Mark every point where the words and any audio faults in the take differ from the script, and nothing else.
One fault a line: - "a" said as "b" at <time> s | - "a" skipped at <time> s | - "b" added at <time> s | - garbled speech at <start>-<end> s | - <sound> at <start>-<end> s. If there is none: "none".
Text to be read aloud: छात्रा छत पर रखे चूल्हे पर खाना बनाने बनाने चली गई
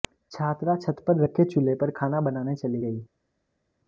- "बनाने" skipped at 2.6 s